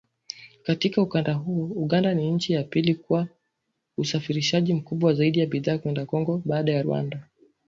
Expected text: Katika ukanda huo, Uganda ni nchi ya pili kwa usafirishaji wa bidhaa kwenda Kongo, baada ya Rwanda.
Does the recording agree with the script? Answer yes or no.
no